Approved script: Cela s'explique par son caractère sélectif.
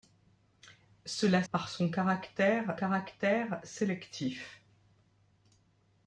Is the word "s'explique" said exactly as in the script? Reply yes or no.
no